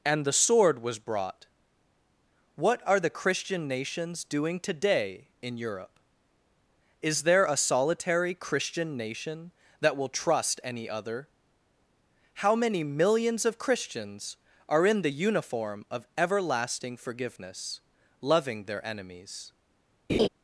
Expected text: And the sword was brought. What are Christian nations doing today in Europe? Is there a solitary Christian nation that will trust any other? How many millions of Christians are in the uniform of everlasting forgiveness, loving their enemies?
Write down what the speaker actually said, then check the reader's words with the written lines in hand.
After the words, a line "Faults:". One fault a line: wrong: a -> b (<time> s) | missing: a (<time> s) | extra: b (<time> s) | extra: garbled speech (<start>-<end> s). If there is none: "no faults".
And the sword was brought. What are the Christian nations doing today in Europe? Is there a solitary Christian nation that will trust any other? How many millions of Christians are in the uniform of everlasting forgiveness, loving their enemies?
Faults:
extra: the (3.0 s)